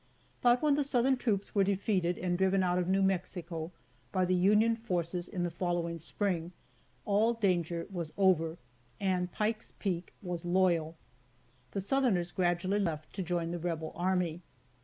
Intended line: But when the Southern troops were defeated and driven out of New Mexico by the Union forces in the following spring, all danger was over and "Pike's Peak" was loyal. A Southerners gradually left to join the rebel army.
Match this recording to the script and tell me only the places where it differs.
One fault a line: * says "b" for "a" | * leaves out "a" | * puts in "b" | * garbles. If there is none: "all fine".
* says "The" for "A"